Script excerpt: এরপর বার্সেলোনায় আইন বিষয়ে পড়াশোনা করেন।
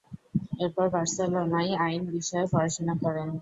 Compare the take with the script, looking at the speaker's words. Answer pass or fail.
pass